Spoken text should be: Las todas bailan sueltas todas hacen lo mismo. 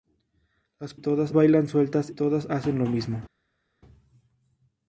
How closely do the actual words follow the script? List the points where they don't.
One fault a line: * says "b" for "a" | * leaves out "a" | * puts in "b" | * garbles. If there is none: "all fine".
all fine